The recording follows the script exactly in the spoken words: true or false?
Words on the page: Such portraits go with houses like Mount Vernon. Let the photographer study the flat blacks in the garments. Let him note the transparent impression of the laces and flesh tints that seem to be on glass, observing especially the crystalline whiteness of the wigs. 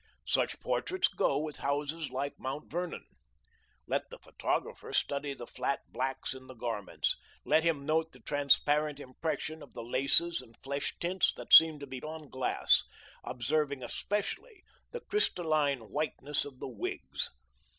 true